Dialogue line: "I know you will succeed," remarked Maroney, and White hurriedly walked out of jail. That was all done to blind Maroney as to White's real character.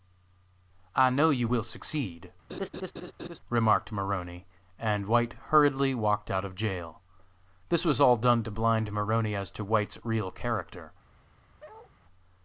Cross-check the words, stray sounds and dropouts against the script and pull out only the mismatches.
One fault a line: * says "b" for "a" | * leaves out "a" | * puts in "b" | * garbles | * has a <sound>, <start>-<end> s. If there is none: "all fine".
* has a laugh, 2.5-3.4 s
* says "This" for "That"
* has a bark, 11.6-11.9 s